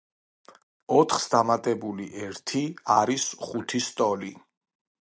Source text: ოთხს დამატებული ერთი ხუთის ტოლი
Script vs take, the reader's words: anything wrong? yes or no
yes